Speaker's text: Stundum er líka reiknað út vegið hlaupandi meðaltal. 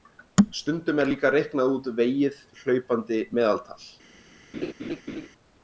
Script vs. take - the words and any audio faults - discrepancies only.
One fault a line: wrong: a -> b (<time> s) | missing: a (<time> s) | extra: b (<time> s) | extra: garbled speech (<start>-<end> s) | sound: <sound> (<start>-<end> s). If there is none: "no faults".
sound: laugh (4.5-5.3 s)